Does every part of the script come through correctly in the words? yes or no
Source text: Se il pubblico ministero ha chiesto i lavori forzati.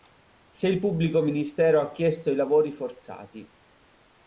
yes